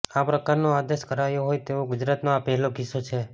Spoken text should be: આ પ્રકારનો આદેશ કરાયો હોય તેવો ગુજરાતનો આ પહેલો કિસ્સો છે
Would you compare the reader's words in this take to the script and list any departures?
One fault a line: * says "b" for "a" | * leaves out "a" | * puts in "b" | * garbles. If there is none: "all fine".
all fine